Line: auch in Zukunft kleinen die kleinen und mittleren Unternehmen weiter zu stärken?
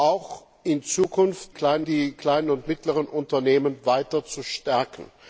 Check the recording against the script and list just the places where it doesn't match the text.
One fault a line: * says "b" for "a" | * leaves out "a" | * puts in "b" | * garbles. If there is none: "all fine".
all fine